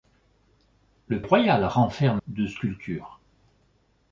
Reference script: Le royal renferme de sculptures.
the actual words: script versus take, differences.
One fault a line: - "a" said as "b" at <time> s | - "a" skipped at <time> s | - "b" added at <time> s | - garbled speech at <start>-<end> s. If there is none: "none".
none